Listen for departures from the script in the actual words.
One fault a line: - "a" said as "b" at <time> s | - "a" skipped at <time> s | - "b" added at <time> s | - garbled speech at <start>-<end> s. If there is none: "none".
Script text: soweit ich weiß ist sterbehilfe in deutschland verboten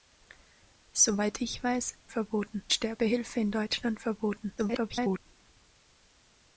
- "ist" said as "verboten" at 2.1 s
- garbled speech at 4.6-5.2 s